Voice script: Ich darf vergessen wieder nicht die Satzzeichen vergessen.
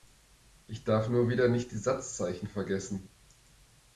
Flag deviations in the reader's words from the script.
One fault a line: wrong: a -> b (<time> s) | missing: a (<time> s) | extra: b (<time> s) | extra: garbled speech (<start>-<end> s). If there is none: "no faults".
wrong: vergessen -> nur (1.1 s)